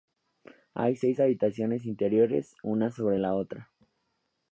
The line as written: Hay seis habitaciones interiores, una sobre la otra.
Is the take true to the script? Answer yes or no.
yes